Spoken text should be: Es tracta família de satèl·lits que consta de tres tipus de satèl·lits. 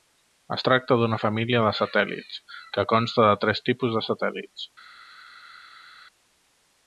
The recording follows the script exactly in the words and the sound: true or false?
false